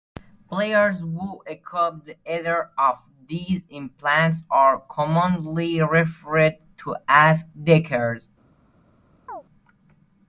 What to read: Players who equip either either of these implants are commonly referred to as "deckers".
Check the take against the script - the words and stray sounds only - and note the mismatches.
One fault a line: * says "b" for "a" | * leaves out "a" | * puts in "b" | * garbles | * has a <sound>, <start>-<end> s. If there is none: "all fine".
* leaves out "either"
* has a chirp, 9.3-9.4 s